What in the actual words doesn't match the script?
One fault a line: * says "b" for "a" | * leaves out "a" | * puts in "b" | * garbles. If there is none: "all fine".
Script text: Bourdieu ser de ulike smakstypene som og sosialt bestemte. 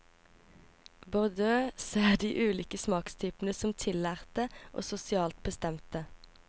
* puts in "tillærte"